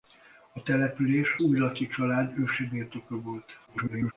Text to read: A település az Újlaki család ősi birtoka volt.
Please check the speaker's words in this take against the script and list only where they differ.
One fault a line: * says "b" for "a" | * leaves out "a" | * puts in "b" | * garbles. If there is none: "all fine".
* leaves out "az"
* garbles